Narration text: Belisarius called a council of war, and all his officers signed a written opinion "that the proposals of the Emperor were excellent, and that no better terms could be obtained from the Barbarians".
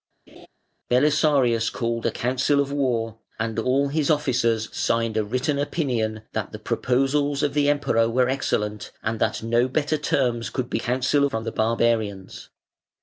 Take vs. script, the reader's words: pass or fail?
fail